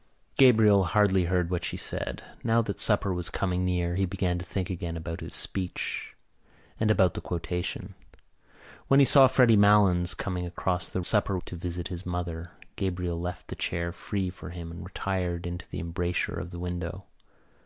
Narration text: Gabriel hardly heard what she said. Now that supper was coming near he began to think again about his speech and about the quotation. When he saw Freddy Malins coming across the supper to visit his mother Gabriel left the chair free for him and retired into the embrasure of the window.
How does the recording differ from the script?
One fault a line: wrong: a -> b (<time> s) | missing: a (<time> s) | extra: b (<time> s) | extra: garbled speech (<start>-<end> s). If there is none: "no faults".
no faults